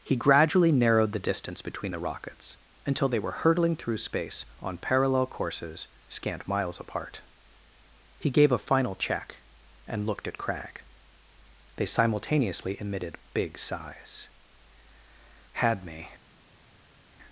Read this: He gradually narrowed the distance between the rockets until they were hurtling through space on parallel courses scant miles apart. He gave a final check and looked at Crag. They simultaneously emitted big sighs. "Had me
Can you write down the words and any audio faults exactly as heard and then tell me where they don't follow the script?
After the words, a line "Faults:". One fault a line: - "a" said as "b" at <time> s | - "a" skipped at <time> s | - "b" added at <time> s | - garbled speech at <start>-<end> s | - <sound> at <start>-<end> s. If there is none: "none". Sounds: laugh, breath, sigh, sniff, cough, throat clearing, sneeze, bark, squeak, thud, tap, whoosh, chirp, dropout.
He gradually narrowed the distance between the rockets until they were hurtling through space on parallel courses scant miles apart. He gave a final check and looked at Crag. They simultaneously emitted big sighs. "Had me
Faults:
none